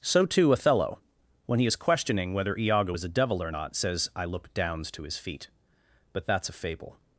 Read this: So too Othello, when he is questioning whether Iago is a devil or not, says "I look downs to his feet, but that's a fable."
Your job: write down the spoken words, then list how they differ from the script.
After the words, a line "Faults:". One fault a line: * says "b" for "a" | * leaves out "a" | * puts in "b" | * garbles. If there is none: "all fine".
So too Othello, when he is questioning whether Iago is a devil or not, says "I look downs to his feet, but that's a fable."
Faults:
all fine